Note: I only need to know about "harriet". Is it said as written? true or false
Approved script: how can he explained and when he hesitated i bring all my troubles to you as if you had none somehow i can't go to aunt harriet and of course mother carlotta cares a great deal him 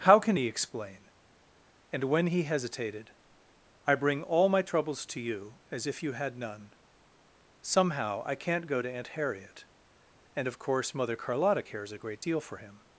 true